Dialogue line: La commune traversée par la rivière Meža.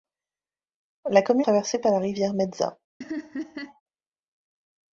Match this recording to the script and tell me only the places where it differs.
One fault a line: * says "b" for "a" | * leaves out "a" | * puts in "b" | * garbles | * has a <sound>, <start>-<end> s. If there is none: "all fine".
* has a laugh, 3.0-3.8 s